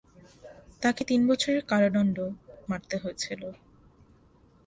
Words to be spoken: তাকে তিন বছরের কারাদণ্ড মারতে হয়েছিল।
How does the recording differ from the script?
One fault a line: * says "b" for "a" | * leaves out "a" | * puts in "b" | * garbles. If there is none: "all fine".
all fine